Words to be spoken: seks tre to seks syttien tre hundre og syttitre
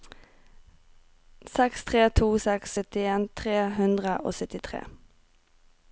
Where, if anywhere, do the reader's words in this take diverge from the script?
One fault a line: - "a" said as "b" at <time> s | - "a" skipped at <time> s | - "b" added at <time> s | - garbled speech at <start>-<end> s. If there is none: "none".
none